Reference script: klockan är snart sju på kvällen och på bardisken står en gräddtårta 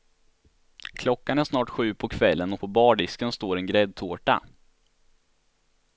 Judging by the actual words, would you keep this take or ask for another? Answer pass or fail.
pass